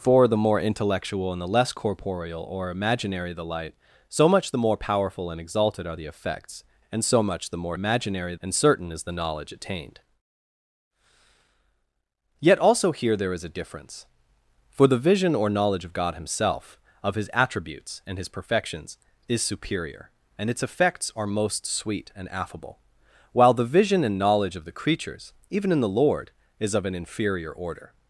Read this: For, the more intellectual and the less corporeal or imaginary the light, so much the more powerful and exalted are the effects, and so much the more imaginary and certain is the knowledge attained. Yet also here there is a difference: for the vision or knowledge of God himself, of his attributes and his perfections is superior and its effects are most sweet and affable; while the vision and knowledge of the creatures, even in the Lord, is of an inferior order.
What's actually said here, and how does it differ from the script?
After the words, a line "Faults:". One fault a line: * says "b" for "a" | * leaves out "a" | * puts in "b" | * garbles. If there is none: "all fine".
For, the more intellectual and the less corporeal or imaginary the light, so much the more powerful and exalted are the effects, and so much the more imaginary and certain is the knowledge attained. Yet also here there is a difference: for the vision or knowledge of God himself, of his attributes and his perfections is superior and its effects are most sweet and affable; while the vision and knowledge of the creatures, even in the Lord, is of an inferior order.
Faults:
all fine